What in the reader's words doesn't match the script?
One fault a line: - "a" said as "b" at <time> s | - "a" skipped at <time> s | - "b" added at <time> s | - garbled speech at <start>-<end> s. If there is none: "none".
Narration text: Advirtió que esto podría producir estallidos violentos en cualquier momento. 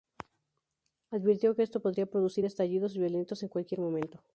none